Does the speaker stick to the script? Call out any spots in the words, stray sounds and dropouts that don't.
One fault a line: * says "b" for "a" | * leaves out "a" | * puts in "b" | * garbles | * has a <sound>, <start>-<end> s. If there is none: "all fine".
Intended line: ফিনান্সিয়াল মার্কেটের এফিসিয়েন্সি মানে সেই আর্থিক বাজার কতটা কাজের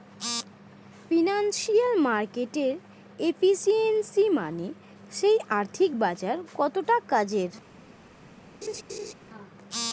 * has a laugh, 8.6-9.1 s